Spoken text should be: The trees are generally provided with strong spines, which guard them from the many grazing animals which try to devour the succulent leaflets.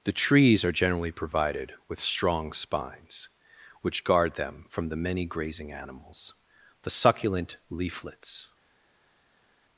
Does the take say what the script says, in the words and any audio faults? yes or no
no